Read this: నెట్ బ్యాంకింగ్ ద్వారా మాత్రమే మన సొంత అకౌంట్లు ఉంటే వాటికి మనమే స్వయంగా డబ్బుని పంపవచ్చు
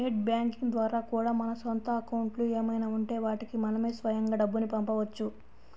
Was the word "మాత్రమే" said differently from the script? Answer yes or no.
yes